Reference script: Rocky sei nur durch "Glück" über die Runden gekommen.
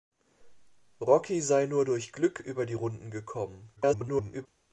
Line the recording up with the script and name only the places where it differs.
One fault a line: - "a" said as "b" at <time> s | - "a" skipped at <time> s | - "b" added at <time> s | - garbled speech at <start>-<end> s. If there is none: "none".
- garbled speech at 3.8-4.5 s